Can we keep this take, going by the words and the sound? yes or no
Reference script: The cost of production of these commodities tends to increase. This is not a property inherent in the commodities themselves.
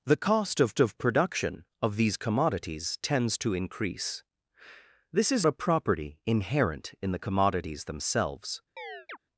no